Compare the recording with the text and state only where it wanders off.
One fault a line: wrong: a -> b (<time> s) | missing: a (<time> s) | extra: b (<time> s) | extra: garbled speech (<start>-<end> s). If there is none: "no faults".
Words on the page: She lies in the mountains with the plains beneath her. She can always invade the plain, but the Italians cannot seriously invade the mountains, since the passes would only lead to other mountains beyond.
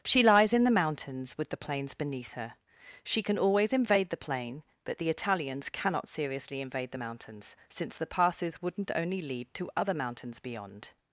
wrong: would -> wouldn't (8.6 s)